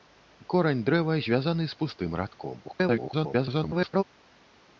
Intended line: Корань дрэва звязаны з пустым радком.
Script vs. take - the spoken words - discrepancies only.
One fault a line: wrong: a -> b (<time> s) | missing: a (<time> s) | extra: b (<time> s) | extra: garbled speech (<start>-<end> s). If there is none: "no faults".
extra: garbled speech (2.6-4.0 s)